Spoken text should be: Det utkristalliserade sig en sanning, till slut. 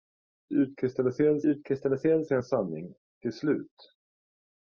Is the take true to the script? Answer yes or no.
no